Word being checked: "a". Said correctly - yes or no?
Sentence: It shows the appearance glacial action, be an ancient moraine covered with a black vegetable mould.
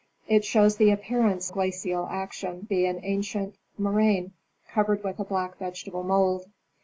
yes